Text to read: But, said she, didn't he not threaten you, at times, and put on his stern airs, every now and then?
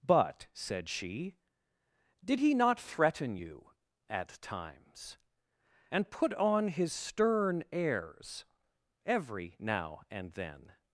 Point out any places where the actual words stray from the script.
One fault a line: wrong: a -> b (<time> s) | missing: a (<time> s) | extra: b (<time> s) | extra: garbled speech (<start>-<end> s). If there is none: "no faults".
wrong: didn't -> did (2.2 s)